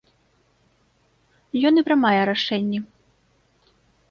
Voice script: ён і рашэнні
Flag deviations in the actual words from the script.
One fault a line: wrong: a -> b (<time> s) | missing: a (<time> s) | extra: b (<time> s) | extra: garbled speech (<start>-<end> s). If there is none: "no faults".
extra: прымае (1.9 s)